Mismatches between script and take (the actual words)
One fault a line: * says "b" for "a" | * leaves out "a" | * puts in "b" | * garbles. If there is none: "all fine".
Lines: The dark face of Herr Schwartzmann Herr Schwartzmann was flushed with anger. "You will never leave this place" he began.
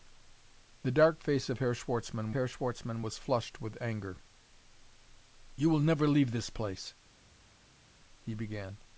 all fine